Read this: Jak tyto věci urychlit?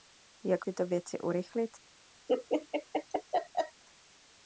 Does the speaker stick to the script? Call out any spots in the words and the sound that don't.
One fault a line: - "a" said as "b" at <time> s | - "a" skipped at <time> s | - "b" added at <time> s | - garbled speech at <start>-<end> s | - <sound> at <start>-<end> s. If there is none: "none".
- laugh at 2.3-3.8 s